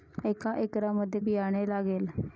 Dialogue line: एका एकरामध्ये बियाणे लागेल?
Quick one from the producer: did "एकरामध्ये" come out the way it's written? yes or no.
yes